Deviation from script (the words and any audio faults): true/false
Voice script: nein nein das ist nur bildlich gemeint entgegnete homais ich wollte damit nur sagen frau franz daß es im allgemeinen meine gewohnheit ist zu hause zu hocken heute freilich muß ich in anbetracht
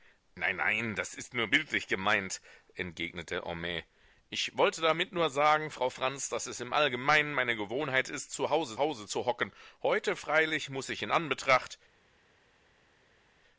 true